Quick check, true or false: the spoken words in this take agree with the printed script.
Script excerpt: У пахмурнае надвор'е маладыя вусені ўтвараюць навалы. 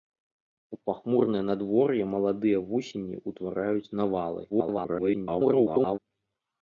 false